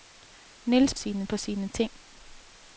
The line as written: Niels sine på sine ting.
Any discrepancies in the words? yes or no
no